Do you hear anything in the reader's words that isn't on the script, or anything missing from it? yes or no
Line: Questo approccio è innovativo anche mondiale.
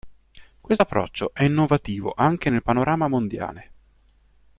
yes